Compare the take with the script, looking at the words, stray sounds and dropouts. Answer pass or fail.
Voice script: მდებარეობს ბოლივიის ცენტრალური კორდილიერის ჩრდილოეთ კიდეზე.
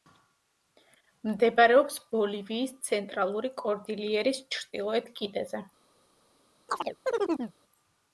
fail